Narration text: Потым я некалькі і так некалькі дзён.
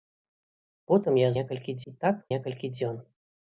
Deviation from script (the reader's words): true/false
false